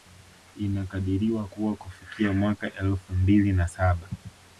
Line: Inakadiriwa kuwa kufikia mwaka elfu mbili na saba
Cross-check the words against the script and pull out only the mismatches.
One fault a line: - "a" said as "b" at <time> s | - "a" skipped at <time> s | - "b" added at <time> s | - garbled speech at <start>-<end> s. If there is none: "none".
none